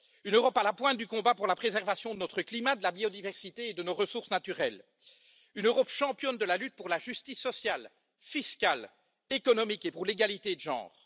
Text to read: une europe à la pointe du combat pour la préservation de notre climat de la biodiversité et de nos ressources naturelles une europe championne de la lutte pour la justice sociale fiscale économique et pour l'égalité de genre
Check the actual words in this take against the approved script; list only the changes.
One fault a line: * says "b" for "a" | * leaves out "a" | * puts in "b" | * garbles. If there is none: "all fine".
all fine